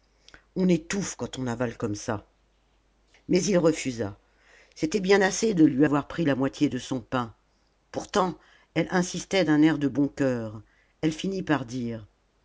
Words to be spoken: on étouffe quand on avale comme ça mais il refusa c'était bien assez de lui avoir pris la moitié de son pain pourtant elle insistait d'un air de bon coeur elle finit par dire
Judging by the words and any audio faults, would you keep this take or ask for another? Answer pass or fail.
pass